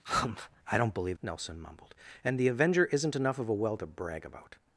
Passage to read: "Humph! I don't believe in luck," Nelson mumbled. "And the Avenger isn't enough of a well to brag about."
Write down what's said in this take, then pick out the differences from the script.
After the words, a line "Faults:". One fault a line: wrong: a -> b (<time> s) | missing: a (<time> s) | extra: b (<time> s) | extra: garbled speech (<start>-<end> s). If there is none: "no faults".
"Humph! I don't believe," Nelson mumbled. "And the Avenger isn't enough of a well to brag about."
Faults:
missing: in luck (1.2 s)